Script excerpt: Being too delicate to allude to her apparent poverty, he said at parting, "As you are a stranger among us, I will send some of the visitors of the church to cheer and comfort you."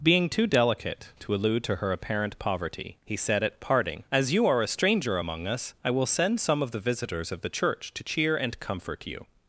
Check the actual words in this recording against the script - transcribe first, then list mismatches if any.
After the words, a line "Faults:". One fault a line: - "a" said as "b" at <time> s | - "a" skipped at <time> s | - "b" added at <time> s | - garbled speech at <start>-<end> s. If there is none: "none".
Being too delicate to allude to her apparent poverty, he said at parting, "As you are a stranger among us, I will send some of the visitors of the church to cheer and comfort you."
Faults:
none